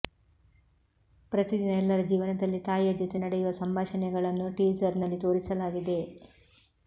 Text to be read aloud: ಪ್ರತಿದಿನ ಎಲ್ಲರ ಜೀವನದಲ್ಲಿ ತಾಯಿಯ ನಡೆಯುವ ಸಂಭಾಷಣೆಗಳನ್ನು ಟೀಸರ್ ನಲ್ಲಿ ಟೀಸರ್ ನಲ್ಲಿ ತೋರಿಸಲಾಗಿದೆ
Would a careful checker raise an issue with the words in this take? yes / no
yes